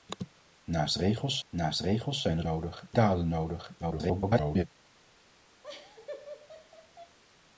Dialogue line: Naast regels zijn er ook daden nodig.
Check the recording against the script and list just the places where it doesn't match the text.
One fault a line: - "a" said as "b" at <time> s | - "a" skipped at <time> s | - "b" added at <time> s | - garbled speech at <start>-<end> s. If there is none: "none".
- "naast regels" added at 1.5 s
- "ook" said as "nodig" at 2.4 s
- garbled speech at 3.8-4.6 s